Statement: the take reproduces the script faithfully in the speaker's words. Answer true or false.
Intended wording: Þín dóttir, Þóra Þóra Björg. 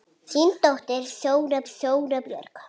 true